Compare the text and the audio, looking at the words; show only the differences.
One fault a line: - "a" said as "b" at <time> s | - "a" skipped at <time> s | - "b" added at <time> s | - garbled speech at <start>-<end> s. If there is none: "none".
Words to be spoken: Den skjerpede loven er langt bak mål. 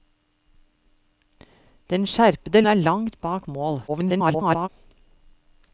- "loven" skipped at 2.6 s
- garbled speech at 3.9-4.7 s